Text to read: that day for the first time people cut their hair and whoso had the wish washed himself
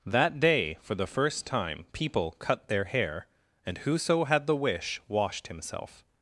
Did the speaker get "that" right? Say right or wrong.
right